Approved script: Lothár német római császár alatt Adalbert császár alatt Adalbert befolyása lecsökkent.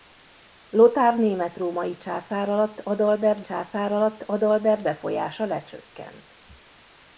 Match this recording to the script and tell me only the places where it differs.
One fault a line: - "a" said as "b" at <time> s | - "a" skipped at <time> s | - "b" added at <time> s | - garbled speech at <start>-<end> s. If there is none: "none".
none